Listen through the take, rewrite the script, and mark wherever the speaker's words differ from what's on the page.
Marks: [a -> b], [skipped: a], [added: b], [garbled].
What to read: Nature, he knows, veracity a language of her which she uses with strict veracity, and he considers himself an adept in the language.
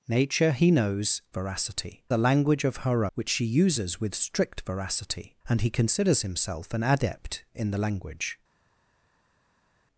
Nature, he knows, veracity a language of her which she uses with strict veracity, and he considers himself an adept in the language.